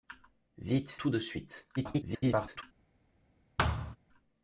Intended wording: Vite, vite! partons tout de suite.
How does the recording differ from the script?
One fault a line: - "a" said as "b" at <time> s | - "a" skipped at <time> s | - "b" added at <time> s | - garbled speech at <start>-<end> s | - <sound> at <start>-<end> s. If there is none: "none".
- "vite partons" skipped at 1.0 s
- garbled speech at 1.8-2.6 s
- thud at 3.6-4.0 s